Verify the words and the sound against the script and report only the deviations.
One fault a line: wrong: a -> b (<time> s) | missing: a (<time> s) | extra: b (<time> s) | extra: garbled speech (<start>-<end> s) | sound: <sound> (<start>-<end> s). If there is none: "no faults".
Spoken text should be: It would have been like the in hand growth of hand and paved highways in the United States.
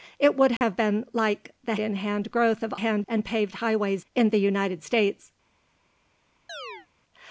sound: dropout (0.6-0.6 s)
sound: chirp (6.5-6.9 s)